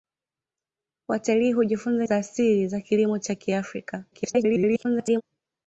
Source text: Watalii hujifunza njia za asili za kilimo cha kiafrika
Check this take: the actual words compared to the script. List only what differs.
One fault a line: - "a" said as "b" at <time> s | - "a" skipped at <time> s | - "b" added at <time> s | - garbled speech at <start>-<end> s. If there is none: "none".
- "njia" skipped at 2.0 s
- garbled speech at 4.1-5.2 s